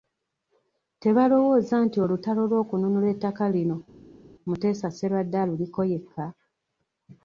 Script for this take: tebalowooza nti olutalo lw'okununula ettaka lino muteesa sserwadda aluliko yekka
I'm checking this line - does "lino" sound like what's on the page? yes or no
yes